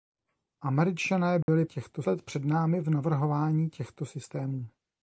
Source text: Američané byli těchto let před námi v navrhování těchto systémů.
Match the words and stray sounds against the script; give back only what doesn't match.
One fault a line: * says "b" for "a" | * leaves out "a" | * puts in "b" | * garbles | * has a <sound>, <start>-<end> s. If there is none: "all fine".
* has a dropout, 1.4-1.5 s